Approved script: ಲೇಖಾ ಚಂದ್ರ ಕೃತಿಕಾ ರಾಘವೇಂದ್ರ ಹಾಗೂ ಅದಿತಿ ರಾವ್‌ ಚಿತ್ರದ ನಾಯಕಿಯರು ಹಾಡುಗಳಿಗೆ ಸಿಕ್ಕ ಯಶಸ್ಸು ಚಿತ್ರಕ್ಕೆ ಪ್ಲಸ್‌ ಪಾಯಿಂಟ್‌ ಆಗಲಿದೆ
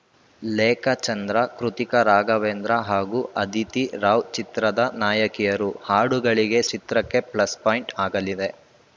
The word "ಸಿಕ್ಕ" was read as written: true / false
false